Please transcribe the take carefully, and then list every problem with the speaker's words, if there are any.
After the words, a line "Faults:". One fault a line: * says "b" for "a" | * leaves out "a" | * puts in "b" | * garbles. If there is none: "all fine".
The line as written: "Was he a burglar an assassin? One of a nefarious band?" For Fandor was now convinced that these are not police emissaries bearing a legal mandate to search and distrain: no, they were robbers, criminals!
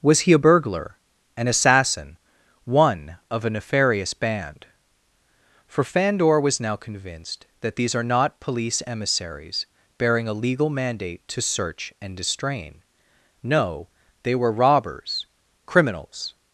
"Was he a burglar an assassin? One of a nefarious band?" For Fandor was now convinced that these are not police emissaries bearing a legal mandate to search and distrain: no, they were robbers, criminals!
Faults:
all fine